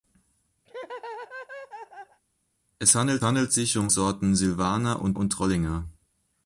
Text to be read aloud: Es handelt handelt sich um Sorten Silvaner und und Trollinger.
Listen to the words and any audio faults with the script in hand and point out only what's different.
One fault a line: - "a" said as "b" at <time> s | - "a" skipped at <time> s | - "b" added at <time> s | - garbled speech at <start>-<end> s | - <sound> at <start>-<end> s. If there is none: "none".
- laugh at 0.7-2.2 s